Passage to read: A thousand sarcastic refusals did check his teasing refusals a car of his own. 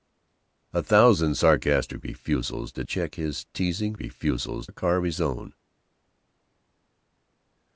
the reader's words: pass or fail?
pass